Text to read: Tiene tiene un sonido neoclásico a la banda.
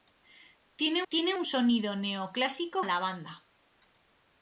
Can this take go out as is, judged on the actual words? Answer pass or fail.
pass